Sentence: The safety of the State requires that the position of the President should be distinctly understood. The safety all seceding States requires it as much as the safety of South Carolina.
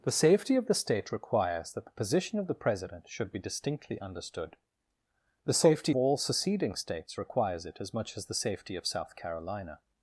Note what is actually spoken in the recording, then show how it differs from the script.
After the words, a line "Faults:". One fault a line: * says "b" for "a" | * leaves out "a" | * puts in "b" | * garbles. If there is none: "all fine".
The safety of the State requires that the position of the President should be distinctly understood. The safety all seceding States requires it as much as the safety of South Carolina.
Faults:
all fine